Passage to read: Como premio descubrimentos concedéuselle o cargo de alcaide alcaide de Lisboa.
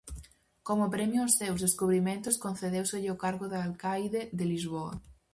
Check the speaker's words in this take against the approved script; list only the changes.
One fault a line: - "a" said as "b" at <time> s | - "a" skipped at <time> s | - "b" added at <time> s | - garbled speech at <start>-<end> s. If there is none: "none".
- "aos seus" added at 1.2 s
- "alcaide" skipped at 4.2 s